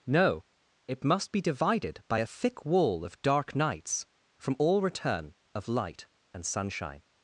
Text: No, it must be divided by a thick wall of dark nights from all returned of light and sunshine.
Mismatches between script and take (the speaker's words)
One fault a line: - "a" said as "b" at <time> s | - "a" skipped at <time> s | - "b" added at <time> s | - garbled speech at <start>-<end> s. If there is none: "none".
- "returned" said as "return" at 4.8 s